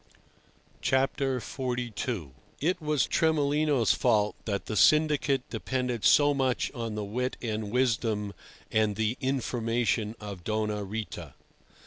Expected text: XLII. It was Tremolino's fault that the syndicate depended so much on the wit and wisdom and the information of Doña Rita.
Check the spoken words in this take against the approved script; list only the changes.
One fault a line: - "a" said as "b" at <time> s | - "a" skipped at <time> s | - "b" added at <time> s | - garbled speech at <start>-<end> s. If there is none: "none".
none